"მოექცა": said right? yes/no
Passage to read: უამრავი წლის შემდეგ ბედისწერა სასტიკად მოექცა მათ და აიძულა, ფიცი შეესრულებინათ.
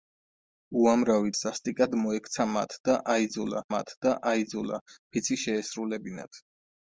no